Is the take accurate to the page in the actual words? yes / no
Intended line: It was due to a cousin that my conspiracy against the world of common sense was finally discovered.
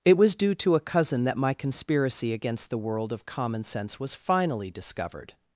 yes